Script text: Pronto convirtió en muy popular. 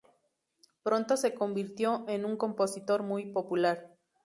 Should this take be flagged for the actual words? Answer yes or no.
yes